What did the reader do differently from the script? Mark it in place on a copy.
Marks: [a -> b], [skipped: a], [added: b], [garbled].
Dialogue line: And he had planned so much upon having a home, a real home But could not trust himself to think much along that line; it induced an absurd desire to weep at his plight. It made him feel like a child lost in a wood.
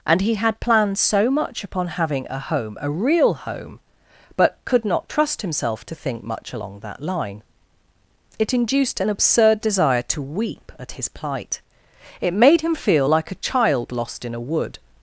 And he had planned so much upon having a home, a real home But could not trust himself to think much along that line; it induced an absurd desire to weep at his plight. It made him feel like a child lost in a wood.